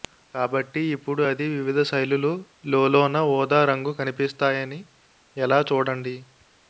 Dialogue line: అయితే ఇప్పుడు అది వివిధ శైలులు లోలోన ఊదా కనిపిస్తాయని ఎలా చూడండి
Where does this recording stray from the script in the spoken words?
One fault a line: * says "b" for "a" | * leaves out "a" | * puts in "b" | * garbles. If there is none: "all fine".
* says "కాబట్టి" for "అయితే"
* puts in "రంగు"